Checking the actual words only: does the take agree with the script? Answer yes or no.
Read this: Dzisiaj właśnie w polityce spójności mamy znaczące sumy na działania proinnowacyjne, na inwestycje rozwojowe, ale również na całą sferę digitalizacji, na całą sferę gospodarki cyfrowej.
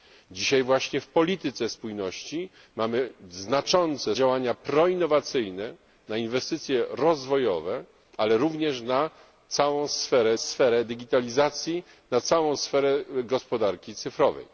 no